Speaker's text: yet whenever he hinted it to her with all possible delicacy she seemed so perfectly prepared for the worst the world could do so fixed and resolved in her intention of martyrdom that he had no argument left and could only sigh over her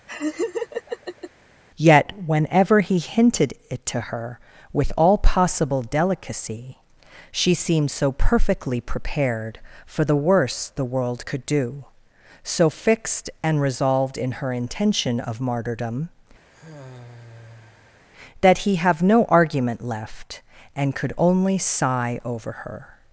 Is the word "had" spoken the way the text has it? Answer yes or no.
no